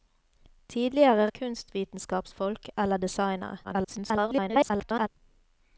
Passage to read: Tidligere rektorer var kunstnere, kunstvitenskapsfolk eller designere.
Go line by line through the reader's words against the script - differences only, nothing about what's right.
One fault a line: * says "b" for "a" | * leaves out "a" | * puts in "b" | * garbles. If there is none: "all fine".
* leaves out "rektorer var kunstnere"
* garbles